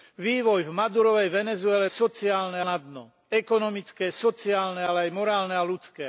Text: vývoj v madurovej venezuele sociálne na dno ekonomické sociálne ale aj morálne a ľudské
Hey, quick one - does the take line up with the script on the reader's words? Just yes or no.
yes